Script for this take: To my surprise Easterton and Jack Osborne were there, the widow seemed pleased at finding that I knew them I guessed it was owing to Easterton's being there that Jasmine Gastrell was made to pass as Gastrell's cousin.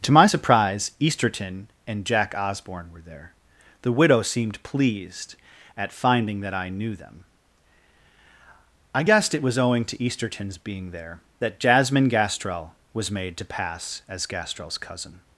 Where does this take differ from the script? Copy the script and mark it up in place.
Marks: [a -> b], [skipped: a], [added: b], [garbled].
To my surprise Easterton and Jack Osborne were there, the widow seemed pleased at finding that I knew them I guessed it was owing to Easterton's being there that Jasmine Gastrell was made to pass as Gastrell's cousin.